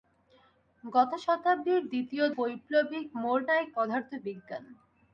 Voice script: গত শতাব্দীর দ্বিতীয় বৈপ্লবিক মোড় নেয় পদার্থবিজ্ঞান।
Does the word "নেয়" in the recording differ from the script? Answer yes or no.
no